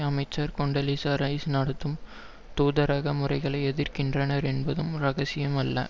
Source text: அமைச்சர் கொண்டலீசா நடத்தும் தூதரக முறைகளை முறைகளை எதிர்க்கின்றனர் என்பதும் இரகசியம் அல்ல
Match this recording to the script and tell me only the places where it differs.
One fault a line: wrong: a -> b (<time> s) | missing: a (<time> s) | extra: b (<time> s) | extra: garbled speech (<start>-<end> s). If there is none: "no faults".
extra: ரைஸ் (1.1 s)
missing: முறைகளை (3.6 s)